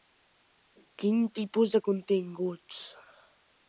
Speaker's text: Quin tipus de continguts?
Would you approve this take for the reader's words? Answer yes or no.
yes